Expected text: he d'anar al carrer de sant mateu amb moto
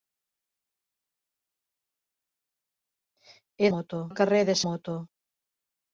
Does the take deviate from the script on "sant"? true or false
true